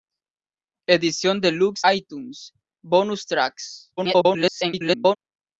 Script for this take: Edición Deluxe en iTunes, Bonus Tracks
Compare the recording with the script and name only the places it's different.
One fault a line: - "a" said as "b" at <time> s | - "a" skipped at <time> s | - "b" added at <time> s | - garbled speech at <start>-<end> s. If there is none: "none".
- "en" skipped at 1.8 s
- garbled speech at 4.0-5.2 s